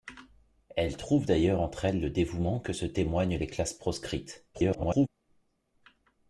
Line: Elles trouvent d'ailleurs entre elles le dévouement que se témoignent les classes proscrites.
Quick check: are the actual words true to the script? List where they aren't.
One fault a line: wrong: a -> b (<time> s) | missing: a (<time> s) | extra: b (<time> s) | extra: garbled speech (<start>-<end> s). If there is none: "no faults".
extra: garbled speech (4.5-5.1 s)